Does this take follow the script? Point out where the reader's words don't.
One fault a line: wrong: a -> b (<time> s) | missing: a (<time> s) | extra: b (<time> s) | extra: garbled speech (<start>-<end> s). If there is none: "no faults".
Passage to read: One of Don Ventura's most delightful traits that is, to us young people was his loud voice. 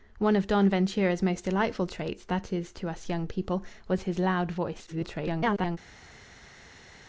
extra: garbled speech (4.9-5.8 s)